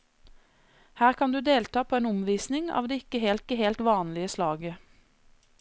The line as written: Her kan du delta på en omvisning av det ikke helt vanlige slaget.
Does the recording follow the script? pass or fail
fail